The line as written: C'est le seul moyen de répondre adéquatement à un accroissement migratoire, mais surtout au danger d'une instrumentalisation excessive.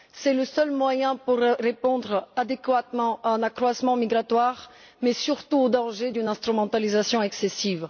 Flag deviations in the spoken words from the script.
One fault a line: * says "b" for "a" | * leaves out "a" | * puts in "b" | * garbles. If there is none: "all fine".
all fine